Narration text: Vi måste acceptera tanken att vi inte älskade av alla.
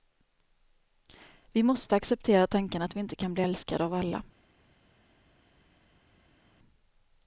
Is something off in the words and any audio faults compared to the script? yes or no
yes